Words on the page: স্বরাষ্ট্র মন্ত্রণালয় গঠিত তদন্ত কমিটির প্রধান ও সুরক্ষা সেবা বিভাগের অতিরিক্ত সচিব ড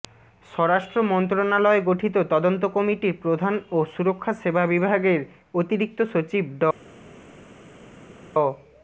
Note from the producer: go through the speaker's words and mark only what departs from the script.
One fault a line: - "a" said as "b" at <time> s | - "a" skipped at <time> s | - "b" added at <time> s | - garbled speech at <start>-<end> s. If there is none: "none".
none